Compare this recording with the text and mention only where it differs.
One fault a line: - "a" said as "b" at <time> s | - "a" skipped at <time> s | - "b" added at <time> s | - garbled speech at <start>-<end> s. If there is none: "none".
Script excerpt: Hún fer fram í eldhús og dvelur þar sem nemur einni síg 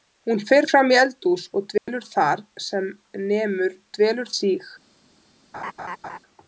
- "einni" said as "dvelur" at 4.0 s